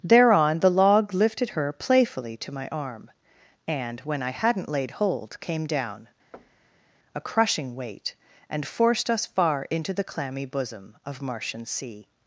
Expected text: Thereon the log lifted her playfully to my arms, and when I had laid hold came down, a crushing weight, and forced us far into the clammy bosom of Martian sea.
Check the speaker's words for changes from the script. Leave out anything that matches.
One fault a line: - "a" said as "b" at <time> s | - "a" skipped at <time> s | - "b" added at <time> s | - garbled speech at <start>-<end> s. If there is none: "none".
- "arms" said as "arm" at 2.7 s
- "had" said as "hadn't" at 4.3 s